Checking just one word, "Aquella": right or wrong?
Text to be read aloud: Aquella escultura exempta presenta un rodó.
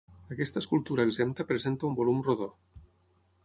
wrong